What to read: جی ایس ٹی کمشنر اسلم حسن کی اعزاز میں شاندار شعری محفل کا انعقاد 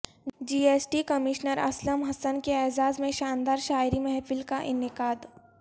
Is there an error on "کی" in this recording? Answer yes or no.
yes